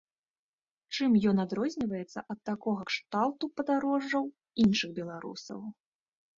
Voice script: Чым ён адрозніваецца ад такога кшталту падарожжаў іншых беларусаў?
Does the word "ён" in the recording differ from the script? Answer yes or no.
no